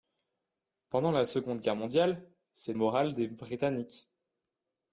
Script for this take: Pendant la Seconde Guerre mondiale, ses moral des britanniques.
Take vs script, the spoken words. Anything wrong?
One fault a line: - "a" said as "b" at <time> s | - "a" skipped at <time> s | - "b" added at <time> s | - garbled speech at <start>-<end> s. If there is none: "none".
none